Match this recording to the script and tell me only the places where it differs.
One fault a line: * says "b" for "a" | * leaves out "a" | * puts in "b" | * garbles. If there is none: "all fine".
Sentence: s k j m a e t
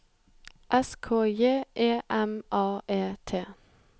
* puts in "e"